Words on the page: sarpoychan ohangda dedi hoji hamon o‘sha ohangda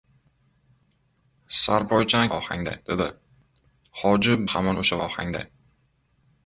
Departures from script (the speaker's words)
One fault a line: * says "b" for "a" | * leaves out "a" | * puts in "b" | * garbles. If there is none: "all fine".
all fine